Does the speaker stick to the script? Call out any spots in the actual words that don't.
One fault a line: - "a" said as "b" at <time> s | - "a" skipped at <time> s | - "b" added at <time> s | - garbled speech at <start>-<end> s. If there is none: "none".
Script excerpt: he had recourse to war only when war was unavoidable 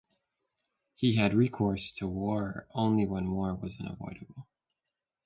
none